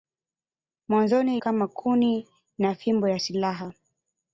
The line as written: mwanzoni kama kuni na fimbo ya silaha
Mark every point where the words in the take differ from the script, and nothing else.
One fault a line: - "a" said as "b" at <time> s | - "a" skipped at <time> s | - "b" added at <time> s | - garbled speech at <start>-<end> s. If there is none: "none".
none